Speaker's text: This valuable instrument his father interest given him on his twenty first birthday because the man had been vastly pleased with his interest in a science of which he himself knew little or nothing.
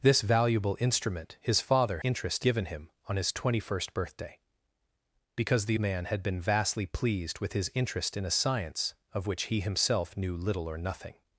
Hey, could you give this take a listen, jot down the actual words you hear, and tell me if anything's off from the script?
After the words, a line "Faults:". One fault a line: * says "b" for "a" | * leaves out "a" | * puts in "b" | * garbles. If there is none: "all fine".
This valuable instrument his father interest given him on his twenty first birthday because the man had been vastly pleased with his interest in a science of which he himself knew little or nothing.
Faults:
all fine